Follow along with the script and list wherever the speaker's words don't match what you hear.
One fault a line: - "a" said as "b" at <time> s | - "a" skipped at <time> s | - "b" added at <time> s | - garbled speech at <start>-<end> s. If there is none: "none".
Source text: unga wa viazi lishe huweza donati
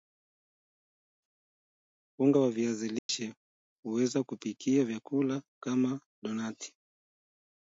- "kupikia vyakula kama" added at 4.2 s